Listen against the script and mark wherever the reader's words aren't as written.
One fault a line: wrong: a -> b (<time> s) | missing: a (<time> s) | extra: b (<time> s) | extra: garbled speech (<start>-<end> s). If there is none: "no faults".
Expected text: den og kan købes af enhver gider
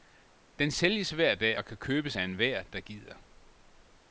extra: sælges hver dag (0.7 s)
extra: der (2.6 s)